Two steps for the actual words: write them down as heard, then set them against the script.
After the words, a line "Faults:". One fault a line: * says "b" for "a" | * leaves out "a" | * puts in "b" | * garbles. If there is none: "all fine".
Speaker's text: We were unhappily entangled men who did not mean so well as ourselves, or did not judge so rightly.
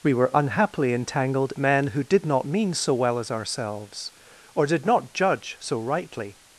We were unhappily entangled men who did not mean so well as ourselves, or did not judge so rightly.
Faults:
all fine